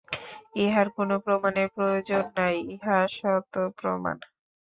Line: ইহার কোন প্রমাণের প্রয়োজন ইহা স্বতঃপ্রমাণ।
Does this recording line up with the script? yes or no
no